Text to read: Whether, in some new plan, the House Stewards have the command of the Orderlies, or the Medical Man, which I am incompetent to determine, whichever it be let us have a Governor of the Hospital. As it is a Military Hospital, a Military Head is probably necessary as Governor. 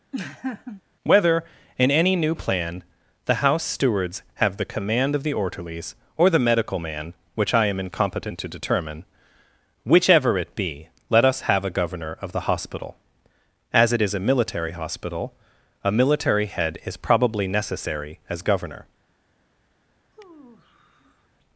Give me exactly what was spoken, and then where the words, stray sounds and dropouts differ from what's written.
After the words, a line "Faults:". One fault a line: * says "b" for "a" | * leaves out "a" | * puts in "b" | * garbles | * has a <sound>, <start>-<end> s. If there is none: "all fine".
Whether, in any new plan, the House Stewards have the command of the Orderlies, or the Medical Man, which I am incompetent to determine, whichever it be let us have a Governor of the Hospital. As it is a Military Hospital, a Military Head is probably necessary as Governor.
Faults:
* has a laugh, 0.1-0.8 s
* says "any" for "some"
* has a sigh, 20.1-21.3 s